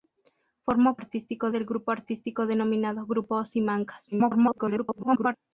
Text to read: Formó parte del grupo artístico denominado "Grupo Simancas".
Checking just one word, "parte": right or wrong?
wrong